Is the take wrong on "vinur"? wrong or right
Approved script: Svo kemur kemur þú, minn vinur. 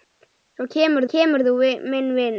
right